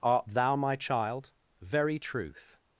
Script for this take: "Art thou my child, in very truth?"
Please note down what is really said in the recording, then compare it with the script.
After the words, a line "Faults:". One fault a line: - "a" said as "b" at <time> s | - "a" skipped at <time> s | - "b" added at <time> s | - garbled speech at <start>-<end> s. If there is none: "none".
"Art thou my child, very truth?"
Faults:
- "in" skipped at 1.3 s